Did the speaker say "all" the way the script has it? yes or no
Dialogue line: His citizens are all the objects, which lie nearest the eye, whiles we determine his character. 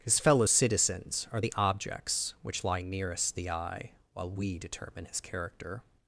no